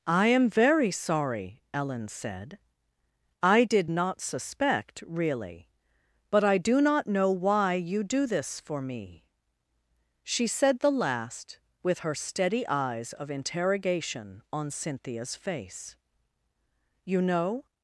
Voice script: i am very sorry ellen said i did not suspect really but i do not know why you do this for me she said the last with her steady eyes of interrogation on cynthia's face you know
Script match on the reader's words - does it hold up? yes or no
yes